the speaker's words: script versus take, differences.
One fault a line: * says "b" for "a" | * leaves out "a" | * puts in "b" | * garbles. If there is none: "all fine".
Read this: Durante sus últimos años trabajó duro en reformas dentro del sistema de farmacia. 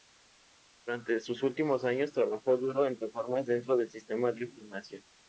all fine